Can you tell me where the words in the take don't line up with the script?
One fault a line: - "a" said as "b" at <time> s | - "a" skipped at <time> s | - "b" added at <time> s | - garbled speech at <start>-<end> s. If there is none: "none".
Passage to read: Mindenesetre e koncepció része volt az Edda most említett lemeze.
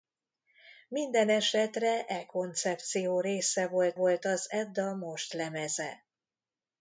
- "volt" added at 3.9 s
- "említett" skipped at 5.3 s